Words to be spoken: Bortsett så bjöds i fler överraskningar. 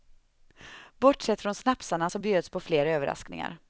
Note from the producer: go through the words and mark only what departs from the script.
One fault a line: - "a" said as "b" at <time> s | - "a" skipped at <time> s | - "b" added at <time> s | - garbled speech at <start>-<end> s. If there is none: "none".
- "från snapsarna" added at 1.4 s
- "i" said as "på" at 2.5 s